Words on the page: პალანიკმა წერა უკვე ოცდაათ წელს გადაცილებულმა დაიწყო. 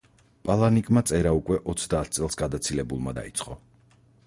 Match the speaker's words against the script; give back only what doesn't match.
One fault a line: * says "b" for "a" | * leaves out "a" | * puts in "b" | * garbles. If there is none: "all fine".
all fine